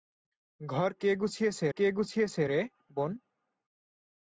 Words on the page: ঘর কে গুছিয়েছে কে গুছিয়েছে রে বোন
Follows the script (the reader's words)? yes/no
yes